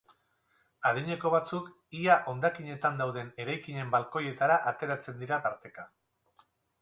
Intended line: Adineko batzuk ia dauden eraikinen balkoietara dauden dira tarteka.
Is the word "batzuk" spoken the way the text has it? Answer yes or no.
yes